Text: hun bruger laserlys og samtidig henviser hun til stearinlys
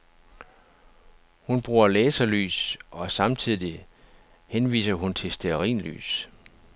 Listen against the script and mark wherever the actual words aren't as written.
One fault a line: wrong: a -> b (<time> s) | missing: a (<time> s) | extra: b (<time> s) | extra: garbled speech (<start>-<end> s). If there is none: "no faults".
no faults